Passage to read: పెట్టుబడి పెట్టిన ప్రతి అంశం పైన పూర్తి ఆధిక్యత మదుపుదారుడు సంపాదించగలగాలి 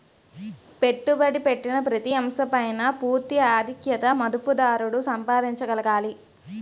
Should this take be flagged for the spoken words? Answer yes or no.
no